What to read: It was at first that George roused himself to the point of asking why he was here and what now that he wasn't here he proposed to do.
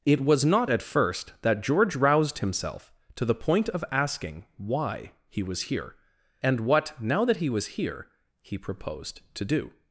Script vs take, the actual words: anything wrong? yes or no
yes